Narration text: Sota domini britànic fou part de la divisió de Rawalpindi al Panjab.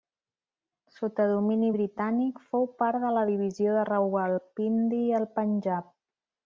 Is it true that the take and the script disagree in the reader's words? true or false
false